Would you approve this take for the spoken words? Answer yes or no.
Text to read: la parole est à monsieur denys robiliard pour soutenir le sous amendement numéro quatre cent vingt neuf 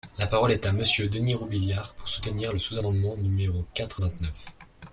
no